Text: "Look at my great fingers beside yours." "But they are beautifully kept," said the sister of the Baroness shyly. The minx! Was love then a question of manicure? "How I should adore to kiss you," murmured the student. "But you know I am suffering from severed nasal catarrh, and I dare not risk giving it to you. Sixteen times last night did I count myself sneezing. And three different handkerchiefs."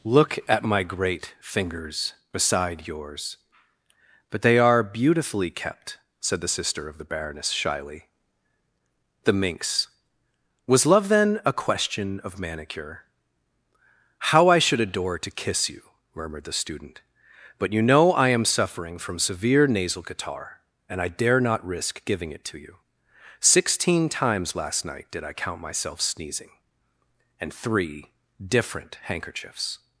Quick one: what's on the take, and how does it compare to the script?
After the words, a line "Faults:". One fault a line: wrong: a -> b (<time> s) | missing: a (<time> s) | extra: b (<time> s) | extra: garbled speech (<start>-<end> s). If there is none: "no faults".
"Look at my great fingers beside yours." "But they are beautifully kept," said the sister of the Baroness shyly. The minx! Was love then a question of manicure? "How I should adore to kiss you," murmured the student. "But you know I am suffering from severe nasal catarrh, and I dare not risk giving it to you. Sixteen times last night did I count myself sneezing. And three different handkerchiefs."
Faults:
wrong: severed -> severe (19.2 s)